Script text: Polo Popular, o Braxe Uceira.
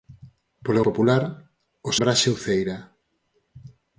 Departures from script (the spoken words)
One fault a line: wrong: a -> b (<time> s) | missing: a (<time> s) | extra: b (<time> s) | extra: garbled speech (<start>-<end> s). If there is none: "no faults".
no faults